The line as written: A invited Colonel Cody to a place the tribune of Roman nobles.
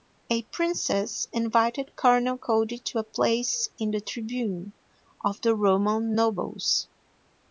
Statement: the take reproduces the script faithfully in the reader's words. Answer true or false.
false